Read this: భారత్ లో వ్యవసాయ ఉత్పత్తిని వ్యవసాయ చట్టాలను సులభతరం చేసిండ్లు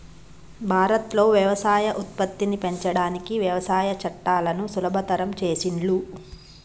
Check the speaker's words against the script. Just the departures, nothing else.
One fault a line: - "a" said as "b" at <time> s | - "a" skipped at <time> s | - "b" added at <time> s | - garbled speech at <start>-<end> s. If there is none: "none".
- "పెంచడానికి" added at 2.6 s